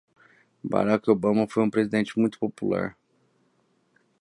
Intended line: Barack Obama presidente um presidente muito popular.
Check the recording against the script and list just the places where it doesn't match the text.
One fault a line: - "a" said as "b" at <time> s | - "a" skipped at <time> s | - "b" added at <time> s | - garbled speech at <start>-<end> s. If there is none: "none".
- "presidente" said as "foi" at 1.5 s